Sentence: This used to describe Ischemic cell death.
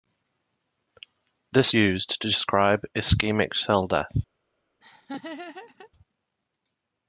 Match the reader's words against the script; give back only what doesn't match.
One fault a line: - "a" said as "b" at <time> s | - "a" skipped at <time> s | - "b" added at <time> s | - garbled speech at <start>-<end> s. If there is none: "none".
none